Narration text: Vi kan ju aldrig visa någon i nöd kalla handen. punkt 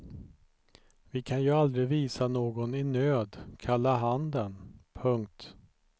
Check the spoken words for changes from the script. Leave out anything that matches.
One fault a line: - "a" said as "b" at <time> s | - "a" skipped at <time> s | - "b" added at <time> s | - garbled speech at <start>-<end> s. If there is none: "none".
none